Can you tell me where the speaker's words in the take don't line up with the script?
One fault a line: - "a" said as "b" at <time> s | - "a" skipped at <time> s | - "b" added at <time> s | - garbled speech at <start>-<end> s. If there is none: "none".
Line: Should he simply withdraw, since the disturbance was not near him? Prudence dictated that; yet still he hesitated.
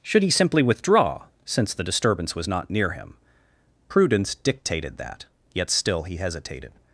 none